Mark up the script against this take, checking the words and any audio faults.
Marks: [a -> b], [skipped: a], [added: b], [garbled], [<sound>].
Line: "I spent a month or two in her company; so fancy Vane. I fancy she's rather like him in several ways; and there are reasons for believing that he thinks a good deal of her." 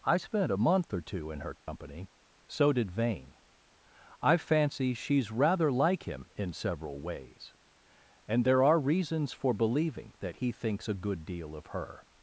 "I spent a month or two in her company; [dropout] so [fancy -> did] Vane. I fancy she's rather like him in several ways; and there are reasons for believing that he thinks a good deal of her."